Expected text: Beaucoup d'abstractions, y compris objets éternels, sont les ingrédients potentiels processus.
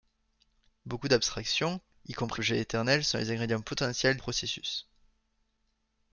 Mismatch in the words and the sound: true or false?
false